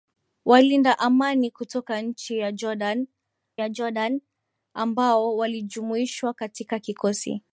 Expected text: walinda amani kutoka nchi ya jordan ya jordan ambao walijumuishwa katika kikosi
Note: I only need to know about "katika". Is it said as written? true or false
true